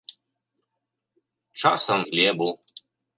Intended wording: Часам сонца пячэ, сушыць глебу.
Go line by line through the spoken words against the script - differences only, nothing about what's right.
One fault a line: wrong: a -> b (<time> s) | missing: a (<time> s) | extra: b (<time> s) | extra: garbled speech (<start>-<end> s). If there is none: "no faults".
missing: сонца пячэ сушыць (2.0 s)